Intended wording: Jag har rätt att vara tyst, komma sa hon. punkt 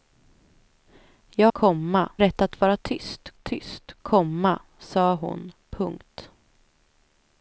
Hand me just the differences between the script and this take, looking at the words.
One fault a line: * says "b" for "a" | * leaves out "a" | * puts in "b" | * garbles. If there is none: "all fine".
* says "komma" for "har"
* puts in "tyst"